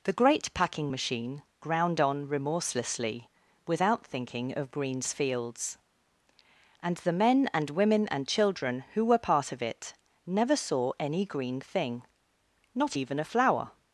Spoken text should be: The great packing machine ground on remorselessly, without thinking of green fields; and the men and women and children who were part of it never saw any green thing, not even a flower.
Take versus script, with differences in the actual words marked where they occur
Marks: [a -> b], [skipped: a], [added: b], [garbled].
The great packing machine ground on remorselessly, without thinking of [green -> greens] fields; and the men and women and children who were part of it never saw any green thing, not even a flower.